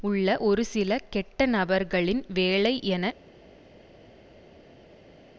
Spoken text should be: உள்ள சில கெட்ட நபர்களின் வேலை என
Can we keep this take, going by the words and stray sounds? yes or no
no